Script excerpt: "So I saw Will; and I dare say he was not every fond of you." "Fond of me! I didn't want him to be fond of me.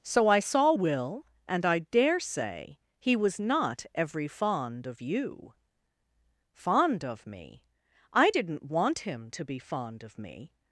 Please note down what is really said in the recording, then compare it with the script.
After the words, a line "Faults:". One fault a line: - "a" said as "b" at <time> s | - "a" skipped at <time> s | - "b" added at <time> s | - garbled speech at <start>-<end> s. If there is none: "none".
"So I saw Will; and I dare say he was not every fond of you." "Fond of me! I didn't want him to be fond of me.
Faults:
none